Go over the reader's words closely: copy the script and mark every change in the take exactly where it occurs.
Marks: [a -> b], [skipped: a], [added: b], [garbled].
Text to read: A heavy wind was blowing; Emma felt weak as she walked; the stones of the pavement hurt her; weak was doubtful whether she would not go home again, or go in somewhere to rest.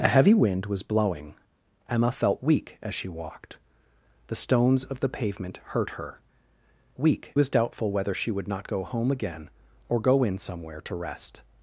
A heavy wind was blowing; Emma felt weak as she walked; the stones of the pavement hurt her; weak was doubtful whether she would not go home again, or go in somewhere to rest.